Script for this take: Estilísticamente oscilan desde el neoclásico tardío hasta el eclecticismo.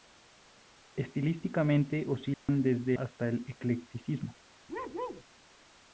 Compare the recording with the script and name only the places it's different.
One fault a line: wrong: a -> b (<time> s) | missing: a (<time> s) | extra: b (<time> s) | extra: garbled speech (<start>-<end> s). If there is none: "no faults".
missing: el neoclásico tardío (3.0 s)